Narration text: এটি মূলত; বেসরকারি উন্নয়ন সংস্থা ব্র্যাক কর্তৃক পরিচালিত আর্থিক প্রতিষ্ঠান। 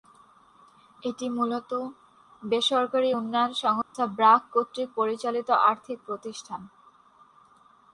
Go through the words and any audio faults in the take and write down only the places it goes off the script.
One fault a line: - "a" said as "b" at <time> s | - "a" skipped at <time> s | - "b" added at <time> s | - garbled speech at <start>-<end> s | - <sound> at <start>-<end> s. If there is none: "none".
- dropout at 3.8-3.9 s